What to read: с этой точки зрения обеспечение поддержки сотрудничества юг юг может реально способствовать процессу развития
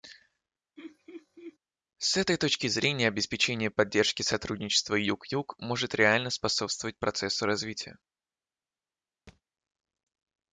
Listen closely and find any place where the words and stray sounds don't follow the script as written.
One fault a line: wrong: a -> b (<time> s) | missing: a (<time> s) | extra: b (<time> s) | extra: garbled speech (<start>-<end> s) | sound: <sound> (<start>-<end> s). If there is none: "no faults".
sound: laugh (0.8-1.6 s)
sound: thud (9.3-9.4 s)